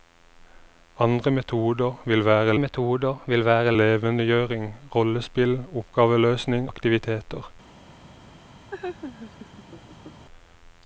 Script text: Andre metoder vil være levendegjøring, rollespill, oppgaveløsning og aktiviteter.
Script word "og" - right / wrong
wrong